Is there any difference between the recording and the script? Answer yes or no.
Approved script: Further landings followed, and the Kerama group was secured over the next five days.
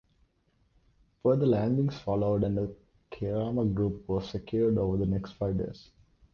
no